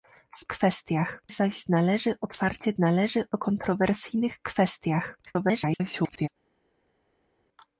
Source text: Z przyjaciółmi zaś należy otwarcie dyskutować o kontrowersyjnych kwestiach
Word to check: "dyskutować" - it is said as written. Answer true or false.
false